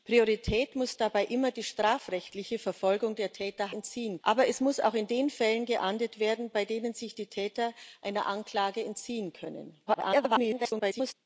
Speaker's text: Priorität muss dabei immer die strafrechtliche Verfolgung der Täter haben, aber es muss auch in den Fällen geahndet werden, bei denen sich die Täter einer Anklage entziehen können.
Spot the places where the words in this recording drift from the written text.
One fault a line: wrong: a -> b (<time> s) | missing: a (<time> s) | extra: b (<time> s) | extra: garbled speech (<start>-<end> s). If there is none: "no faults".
wrong: haben -> entziehen (3.7 s)
extra: garbled speech (9.9-11.1 s)